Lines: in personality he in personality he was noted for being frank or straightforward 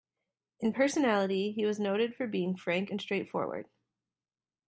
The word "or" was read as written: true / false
false